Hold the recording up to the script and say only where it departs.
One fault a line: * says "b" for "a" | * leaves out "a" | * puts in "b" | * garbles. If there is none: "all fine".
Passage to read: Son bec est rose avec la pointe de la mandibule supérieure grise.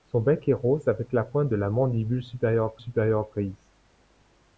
* puts in "supérieure"